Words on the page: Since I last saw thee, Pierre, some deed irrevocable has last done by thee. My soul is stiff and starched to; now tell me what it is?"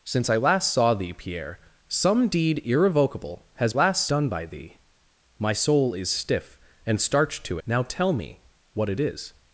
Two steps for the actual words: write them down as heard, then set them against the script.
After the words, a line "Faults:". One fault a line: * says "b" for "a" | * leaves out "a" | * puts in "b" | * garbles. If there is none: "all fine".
Since I last saw thee, Pierre, some deed irrevocable has last done by thee. My soul is stiff and starched to; now tell me what it is?"
Faults:
all fine